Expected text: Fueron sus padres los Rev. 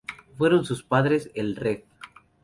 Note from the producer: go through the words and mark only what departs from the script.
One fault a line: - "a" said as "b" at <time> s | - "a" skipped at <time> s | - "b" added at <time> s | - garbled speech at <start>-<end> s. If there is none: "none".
- "los" said as "el" at 1.4 s